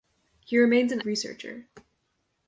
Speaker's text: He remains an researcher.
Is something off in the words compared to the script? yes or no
no